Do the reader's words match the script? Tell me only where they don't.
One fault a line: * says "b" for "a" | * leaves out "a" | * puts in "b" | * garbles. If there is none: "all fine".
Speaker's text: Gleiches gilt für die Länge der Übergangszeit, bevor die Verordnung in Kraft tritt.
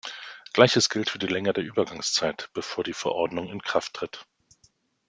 all fine